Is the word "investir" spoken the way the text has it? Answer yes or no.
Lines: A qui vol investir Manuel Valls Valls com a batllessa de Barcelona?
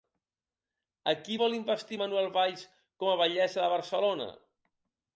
yes